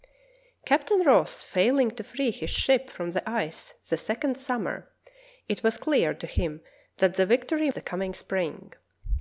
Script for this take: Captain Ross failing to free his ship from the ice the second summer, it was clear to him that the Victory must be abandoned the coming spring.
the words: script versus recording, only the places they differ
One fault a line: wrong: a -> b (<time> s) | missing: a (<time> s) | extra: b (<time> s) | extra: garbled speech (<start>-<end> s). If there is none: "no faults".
missing: must be abandoned (7.7 s)